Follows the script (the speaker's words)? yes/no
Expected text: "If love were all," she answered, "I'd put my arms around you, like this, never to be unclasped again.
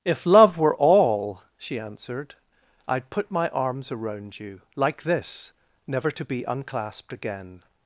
yes